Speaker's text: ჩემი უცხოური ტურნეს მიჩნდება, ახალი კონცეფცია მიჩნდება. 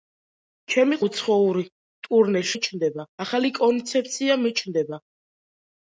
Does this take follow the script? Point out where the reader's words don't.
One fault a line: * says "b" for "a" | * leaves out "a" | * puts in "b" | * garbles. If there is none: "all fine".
all fine